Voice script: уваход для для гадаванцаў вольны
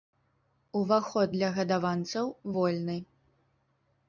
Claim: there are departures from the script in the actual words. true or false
true